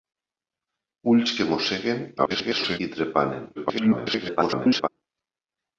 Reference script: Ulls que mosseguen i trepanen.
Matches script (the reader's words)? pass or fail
fail